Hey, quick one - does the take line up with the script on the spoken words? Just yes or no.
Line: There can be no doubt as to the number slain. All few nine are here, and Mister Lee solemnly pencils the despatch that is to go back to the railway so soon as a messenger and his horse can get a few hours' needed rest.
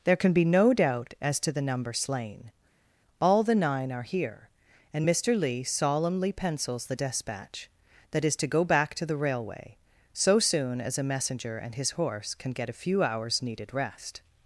no